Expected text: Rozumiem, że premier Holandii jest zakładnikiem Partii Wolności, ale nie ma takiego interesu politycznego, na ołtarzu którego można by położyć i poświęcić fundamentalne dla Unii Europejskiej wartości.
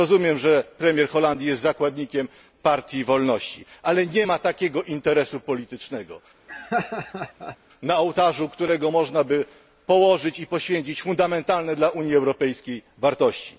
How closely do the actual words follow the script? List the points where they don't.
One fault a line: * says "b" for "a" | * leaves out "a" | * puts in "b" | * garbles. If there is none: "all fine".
all fine